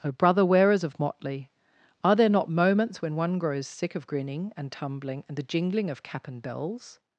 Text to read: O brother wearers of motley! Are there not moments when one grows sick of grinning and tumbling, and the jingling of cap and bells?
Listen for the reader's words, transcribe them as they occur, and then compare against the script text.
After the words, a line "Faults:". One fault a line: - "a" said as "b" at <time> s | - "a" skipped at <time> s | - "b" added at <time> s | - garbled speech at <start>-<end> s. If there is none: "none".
O brother wearers of motley! Are there not moments when one grows sick of grinning and tumbling, and the jingling of cap and bells?
Faults:
none